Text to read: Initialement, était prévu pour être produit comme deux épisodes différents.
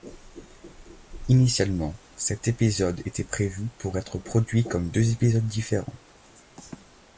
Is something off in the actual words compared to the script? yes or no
yes